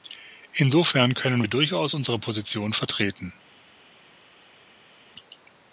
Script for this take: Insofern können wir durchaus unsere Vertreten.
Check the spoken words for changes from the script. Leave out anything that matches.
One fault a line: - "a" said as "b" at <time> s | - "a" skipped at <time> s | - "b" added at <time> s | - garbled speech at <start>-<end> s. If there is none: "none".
- "Position" added at 2.2 s